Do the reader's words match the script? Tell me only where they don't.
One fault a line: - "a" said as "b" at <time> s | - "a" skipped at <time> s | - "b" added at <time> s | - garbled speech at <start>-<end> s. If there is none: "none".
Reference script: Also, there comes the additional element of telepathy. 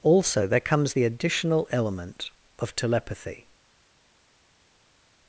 none